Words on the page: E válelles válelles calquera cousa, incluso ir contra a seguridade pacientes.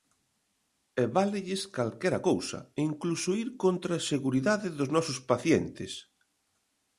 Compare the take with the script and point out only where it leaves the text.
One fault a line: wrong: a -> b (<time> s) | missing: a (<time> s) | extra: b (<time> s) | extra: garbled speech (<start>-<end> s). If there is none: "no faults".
missing: válelles (1.6 s)
extra: dos nosos (4.8 s)